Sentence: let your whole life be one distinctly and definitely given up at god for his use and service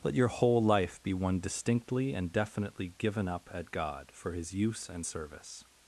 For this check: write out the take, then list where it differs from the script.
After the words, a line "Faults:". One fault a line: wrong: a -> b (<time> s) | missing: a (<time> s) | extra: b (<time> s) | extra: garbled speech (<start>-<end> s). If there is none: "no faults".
let your whole life be one distinctly and definitely given up at god for his use and service
Faults:
no faults